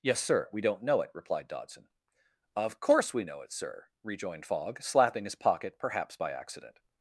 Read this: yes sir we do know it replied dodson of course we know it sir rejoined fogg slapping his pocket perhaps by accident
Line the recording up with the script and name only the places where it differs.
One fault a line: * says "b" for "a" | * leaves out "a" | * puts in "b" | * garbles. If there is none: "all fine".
* says "don't" for "do"